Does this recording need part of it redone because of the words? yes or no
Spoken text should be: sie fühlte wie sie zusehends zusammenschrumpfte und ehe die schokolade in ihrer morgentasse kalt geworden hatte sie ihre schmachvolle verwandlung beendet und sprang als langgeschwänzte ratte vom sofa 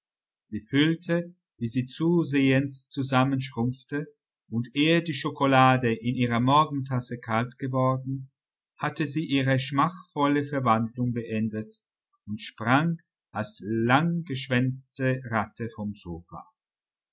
no